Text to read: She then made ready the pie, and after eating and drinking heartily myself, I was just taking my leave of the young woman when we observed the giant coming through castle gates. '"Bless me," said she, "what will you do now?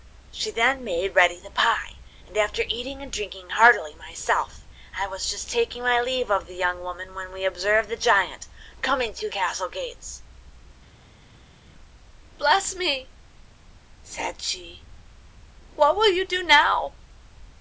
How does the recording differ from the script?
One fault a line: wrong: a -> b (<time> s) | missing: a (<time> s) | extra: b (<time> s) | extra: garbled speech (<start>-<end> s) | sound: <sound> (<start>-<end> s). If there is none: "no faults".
no faults